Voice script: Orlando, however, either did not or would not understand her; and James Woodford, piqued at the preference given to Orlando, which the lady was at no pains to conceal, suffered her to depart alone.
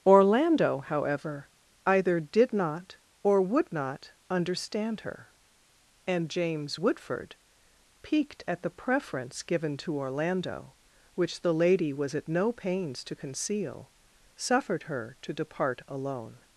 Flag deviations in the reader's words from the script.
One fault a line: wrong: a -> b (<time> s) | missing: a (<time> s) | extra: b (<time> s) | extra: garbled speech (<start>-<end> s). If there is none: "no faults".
no faults